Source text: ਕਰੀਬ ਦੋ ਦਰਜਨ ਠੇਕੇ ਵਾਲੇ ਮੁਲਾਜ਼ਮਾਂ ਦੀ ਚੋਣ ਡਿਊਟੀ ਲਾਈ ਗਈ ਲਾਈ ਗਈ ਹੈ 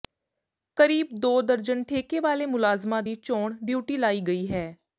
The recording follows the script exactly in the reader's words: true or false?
false